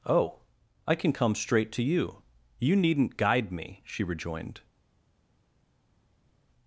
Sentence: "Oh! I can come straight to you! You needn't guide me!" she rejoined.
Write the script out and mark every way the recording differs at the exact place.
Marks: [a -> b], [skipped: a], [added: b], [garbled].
"Oh! I can come straight to you! You needn't guide me!" she rejoined.